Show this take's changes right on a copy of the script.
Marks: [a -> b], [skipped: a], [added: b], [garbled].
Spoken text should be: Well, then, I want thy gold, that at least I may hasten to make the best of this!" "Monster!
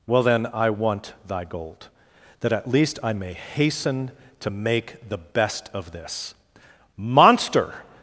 Well, then, I want thy gold, that at least I may hasten to make the best of this!" "Monster!